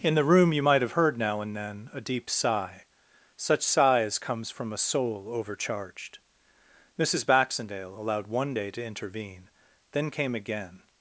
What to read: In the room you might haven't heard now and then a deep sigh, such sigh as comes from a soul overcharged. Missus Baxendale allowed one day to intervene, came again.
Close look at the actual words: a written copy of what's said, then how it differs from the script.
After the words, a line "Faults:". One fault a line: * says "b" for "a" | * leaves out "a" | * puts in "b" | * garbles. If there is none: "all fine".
In the room you might have heard now and then a deep sigh, such sigh as comes from a soul overcharged. Missus Baxendale allowed one day to intervene, then came again.
Faults:
* says "have" for "haven't"
* puts in "then"